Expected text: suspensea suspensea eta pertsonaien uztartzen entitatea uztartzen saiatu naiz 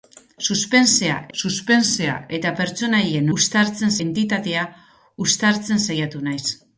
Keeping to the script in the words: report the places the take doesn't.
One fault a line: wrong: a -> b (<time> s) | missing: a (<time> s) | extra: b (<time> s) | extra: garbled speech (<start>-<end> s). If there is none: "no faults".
no faults